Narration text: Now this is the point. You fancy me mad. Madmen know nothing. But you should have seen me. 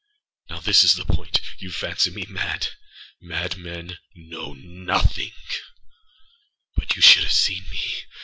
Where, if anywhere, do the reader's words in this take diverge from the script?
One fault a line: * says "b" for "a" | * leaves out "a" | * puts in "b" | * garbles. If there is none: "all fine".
all fine